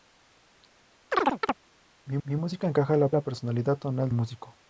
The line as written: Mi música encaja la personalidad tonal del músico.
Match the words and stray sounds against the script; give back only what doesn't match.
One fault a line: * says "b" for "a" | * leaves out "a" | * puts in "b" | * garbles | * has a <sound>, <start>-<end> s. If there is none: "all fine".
* has a chirp, 1.1-1.6 s
* puts in "mi"
* puts in "la"
* leaves out "del"